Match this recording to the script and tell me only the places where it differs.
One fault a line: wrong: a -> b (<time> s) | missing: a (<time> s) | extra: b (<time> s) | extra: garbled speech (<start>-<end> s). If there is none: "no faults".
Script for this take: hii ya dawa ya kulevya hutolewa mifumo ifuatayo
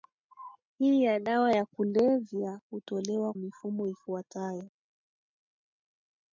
no faults